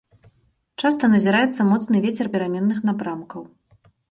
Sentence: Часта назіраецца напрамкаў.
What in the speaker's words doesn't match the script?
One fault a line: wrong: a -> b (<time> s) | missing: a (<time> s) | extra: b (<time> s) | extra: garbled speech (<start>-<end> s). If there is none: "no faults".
extra: моцны вецер пераменных (1.7 s)